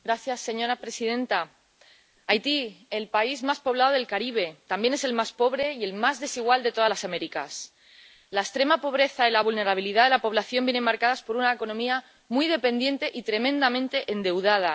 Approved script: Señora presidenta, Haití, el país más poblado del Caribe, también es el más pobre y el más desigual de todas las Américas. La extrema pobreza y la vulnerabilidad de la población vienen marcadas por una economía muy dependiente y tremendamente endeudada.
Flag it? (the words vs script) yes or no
no